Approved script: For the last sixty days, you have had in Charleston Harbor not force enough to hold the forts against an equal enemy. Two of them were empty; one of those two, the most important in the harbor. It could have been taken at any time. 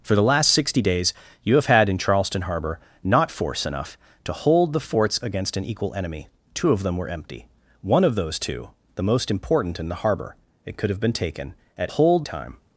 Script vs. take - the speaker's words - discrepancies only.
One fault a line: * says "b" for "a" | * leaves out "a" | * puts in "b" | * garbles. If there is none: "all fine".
* says "hold" for "any"